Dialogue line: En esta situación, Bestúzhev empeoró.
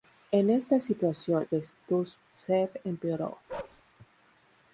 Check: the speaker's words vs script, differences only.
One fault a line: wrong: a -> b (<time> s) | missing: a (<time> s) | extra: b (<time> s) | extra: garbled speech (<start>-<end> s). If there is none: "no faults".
no faults